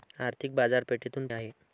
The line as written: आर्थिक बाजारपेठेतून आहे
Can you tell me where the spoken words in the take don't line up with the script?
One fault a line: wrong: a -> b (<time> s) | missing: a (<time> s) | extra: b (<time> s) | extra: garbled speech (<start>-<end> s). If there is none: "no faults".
no faults